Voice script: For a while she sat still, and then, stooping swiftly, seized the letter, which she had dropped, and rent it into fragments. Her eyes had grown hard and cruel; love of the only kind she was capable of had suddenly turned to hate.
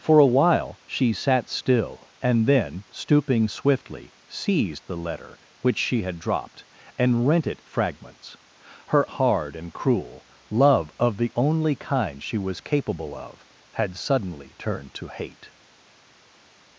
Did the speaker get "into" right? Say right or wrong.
wrong